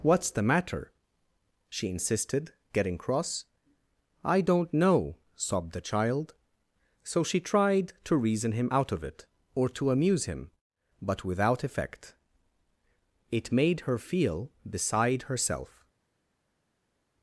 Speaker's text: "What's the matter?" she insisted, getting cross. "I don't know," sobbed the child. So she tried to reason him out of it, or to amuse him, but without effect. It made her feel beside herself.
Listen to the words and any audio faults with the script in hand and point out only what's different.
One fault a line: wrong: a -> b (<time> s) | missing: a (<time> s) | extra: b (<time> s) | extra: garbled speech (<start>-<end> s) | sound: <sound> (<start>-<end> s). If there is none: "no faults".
no faults